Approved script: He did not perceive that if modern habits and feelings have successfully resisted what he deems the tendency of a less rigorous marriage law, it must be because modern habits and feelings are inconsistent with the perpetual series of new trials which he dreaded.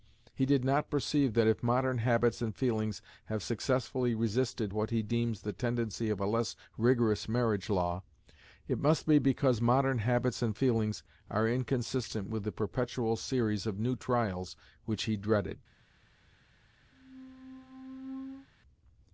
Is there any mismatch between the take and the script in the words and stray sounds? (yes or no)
yes